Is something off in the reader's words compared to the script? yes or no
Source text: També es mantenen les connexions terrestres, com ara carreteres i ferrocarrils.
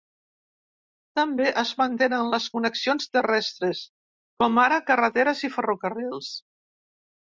no